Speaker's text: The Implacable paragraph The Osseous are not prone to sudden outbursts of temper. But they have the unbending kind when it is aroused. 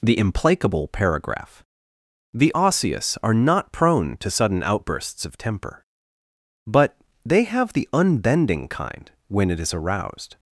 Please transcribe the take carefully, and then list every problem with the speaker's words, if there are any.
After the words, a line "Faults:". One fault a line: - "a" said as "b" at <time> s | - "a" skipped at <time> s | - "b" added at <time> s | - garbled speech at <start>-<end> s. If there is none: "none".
The Implacable paragraph The Osseous are not prone to sudden outbursts of temper. But they have the unbending kind when it is aroused.
Faults:
none